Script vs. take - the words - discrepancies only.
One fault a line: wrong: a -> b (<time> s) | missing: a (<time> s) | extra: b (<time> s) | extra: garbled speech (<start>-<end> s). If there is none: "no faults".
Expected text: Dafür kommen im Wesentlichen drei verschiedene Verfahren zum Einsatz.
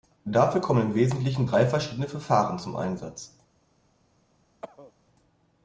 no faults